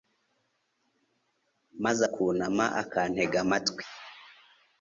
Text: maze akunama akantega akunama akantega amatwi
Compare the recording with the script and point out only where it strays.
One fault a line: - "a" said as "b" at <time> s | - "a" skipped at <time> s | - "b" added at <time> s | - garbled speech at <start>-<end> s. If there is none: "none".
- "akunama akantega" skipped at 3.4 s